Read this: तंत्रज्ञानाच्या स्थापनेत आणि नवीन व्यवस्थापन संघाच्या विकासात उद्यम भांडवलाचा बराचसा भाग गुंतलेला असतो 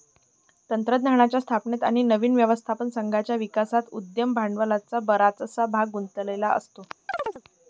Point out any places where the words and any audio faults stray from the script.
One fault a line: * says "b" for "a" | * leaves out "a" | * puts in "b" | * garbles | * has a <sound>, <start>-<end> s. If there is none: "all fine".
* has a chirp, 7.1-7.4 s